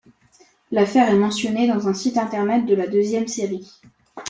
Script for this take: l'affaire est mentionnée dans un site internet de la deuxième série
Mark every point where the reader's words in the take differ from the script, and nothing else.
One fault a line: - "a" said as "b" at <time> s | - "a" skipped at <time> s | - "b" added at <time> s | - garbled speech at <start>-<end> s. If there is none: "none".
none